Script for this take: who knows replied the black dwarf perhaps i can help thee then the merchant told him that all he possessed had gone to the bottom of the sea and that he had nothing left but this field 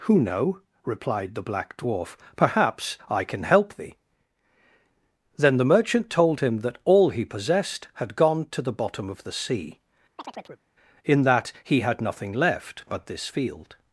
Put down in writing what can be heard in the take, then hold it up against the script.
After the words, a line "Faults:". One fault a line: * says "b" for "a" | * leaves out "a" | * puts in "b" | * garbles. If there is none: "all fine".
who know replied the black dwarf perhaps i can help thee then the merchant told him that all he possessed had gone to the bottom of the sea in that he had nothing left but this field
Faults:
* says "know" for "knows"
* says "in" for "and"